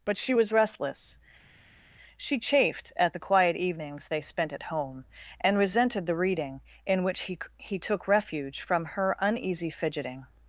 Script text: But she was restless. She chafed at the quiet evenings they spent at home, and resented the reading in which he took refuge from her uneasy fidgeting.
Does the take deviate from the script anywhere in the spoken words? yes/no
yes